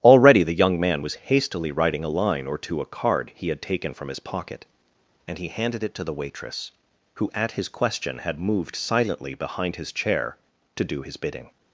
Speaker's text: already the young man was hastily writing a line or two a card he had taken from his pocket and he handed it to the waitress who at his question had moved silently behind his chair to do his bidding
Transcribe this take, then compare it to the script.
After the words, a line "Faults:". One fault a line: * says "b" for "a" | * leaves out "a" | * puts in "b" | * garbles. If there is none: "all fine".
already the young man was hastily writing a line or two a card he had taken from his pocket and he handed it to the waitress who at his question had moved silently behind his chair to do his bidding
Faults:
all fine